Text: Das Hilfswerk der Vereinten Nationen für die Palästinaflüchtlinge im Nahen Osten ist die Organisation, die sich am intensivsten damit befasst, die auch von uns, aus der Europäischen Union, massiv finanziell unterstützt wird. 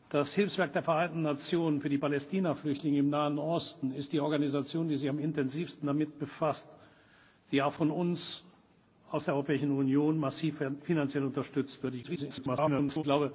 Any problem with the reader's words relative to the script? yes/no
yes